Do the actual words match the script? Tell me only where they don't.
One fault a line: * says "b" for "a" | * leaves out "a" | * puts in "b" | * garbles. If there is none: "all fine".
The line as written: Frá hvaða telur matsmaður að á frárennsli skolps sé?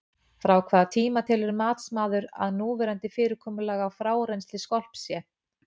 * puts in "tíma"
* puts in "núverandi fyrirkomulag"